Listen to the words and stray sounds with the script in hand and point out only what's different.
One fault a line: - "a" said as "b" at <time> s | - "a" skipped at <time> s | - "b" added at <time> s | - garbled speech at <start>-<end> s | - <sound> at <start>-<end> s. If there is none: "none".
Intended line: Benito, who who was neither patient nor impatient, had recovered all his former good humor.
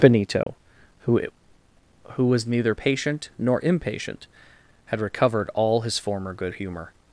- dropout at 0.4-0.5 s